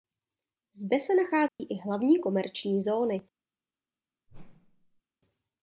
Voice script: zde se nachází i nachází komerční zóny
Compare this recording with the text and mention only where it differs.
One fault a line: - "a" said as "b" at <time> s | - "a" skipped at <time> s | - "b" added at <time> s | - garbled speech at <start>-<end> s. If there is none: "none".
- "nachází" said as "hlavní" at 1.8 s